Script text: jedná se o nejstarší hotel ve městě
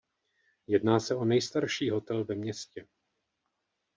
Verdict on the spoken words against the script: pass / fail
pass